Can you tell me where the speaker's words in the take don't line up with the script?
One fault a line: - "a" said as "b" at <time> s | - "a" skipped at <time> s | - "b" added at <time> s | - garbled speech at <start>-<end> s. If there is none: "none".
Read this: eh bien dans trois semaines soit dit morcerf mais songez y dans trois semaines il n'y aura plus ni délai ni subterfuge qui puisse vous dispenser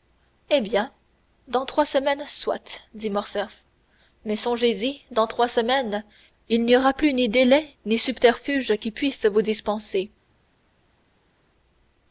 none